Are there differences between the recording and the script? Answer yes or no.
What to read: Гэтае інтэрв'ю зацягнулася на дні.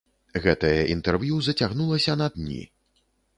no